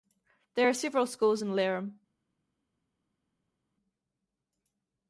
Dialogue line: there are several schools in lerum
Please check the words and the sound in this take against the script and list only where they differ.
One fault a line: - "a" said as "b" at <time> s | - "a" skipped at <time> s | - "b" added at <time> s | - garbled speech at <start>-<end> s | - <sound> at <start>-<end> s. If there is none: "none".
none